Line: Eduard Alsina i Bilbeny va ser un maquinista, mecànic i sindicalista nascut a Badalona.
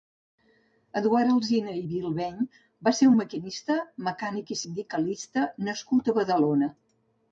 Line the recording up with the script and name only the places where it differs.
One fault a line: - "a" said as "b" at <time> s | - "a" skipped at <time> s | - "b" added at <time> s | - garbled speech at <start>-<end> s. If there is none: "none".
none